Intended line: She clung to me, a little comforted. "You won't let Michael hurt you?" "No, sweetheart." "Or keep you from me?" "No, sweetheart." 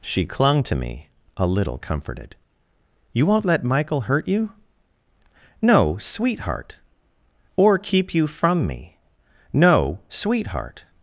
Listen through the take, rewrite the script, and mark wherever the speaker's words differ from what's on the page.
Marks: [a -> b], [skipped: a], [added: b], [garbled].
She clung to me, a little comforted. "You won't let Michael hurt you?" "No, sweetheart." "Or keep you from me?" "No, sweetheart."